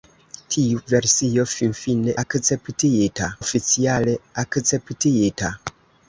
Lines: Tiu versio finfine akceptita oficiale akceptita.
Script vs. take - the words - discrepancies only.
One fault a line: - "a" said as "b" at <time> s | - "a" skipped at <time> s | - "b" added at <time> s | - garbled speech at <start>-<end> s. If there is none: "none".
none